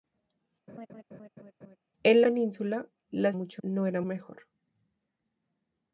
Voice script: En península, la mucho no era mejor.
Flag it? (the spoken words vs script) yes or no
no